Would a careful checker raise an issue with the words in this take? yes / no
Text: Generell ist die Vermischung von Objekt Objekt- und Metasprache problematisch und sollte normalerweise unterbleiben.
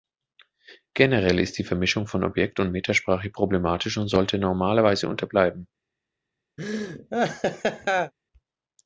yes